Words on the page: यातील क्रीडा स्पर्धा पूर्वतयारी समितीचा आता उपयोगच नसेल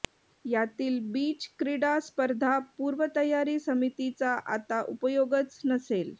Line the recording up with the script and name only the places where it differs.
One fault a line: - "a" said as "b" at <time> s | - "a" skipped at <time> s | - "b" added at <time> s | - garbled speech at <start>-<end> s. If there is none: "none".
- "बीच" added at 1.1 s